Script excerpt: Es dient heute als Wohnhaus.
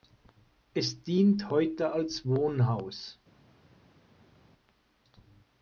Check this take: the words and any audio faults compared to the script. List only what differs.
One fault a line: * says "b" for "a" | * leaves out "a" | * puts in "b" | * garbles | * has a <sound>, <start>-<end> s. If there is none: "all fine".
all fine